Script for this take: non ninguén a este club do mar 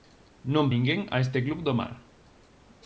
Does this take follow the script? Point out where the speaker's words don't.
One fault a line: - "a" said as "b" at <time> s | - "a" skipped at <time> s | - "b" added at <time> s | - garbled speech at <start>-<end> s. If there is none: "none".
none